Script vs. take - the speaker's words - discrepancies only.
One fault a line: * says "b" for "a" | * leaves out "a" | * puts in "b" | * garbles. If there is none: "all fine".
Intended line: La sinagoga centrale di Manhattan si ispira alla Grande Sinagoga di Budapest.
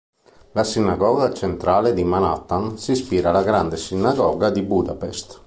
all fine